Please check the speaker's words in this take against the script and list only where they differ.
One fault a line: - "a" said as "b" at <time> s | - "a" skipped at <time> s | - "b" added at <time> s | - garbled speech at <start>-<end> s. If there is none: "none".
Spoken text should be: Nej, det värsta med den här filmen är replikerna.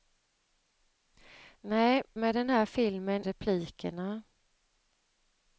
- "det värsta" skipped at 2.0 s
- "är" skipped at 3.3 s